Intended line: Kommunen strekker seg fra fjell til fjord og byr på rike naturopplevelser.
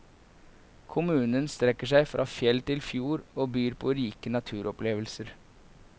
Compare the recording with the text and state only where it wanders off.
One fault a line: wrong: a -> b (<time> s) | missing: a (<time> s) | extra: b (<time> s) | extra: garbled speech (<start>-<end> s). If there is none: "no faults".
no faults